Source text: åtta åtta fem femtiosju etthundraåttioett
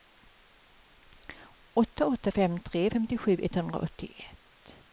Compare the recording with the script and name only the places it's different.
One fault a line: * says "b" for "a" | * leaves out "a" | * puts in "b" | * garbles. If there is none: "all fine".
* puts in "tre"